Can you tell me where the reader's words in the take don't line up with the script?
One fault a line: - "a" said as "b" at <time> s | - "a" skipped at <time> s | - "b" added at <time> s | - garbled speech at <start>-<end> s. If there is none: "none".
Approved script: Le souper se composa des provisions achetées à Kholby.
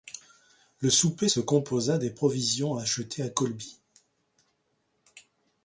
none